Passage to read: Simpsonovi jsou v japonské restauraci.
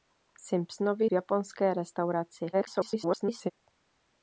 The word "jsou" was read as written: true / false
false